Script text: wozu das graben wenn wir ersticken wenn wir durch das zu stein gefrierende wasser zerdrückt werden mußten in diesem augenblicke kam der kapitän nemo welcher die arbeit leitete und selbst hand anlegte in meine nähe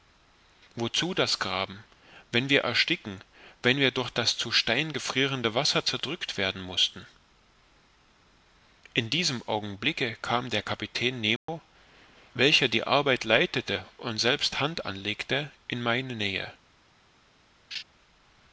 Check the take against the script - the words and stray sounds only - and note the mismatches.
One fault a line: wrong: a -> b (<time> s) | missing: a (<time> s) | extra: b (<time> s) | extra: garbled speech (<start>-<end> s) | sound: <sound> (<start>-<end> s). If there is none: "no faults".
sound: dropout (11.4-11.5 s)
sound: laugh (17.7-17.8 s)